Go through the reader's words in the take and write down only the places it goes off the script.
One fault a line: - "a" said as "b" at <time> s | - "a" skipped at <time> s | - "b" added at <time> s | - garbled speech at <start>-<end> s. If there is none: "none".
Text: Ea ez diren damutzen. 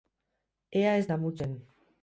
- "diren" skipped at 1.1 s